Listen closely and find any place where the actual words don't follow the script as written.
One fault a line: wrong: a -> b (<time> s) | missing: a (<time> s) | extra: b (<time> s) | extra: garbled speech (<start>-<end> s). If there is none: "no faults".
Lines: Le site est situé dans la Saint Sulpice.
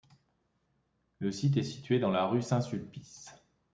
extra: rue (2.2 s)